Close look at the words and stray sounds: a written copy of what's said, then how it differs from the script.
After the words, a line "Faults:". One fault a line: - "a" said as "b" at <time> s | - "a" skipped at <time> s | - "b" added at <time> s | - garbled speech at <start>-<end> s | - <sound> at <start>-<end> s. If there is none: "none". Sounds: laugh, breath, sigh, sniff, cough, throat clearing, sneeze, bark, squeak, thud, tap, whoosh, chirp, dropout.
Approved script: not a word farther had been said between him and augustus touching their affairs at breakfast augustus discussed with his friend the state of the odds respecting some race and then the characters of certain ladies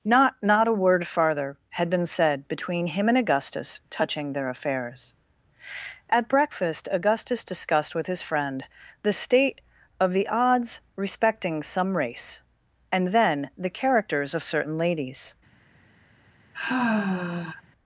not not a word farther had been said between him and augustus touching their affairs at breakfast augustus discussed with his friend the state of the odds respecting some race and then the characters of certain ladies
Faults:
- "not" added at 0.4 s
- sigh at 16.5-17.6 s